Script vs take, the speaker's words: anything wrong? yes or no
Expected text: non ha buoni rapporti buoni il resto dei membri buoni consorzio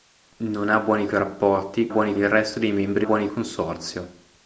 no